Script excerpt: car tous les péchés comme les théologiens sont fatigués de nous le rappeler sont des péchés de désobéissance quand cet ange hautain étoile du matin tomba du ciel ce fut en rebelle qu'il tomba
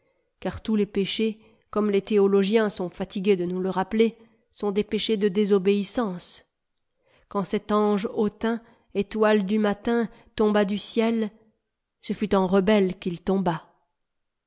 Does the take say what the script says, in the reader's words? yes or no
yes